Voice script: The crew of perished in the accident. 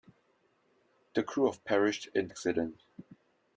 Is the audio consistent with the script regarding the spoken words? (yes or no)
no